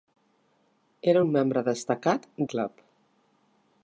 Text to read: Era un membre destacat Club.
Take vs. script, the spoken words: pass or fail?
pass